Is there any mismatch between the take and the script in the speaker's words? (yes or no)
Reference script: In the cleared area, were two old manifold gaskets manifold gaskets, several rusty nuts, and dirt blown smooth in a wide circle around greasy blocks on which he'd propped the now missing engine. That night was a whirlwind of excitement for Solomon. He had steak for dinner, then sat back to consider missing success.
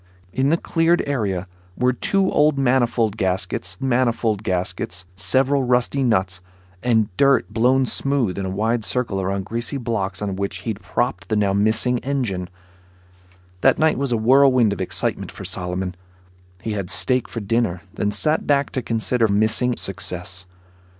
no